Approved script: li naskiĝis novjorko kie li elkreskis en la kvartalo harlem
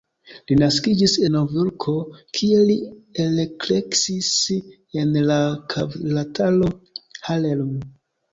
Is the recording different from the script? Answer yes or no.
no